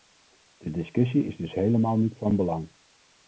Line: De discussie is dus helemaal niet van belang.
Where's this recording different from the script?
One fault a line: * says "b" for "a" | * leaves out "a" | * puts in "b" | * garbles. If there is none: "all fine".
all fine